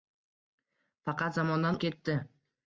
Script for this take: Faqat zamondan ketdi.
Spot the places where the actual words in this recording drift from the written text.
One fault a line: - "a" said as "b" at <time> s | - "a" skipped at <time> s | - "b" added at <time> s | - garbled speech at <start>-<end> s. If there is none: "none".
none